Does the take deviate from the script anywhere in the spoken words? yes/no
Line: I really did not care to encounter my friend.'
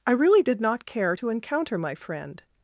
no